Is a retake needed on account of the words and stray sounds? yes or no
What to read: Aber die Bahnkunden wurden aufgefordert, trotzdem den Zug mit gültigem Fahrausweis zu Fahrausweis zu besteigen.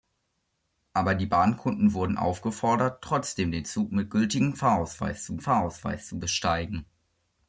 no